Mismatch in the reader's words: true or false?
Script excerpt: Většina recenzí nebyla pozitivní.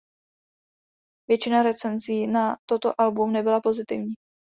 true